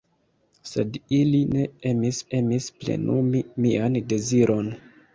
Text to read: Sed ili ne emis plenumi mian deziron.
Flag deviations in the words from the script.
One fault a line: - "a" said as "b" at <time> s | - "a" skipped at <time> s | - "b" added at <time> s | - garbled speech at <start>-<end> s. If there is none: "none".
- "emis" added at 2.4 s